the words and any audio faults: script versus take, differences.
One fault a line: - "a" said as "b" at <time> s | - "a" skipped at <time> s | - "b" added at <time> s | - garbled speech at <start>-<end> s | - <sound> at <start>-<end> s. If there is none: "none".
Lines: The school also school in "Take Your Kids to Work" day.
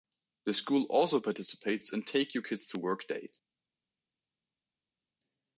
- "school" said as "participates" at 1.2 s